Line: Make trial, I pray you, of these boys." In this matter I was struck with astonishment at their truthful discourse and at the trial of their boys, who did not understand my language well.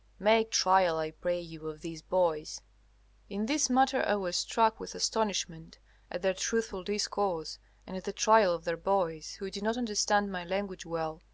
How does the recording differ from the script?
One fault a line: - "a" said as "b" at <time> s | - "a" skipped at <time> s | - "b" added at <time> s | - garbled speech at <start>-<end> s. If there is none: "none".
none